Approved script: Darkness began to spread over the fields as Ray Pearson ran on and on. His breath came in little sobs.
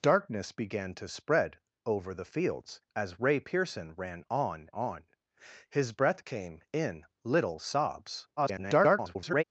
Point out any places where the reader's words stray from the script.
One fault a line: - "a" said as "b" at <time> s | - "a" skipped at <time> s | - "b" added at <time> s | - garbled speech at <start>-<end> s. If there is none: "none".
- "and" skipped at 4.7 s
- garbled speech at 8.4-9.4 s